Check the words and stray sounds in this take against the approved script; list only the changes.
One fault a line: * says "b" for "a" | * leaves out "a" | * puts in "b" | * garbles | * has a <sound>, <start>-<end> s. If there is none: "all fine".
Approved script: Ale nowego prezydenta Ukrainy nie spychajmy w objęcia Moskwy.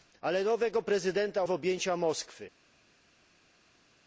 * leaves out "Ukrainy nie spychajmy"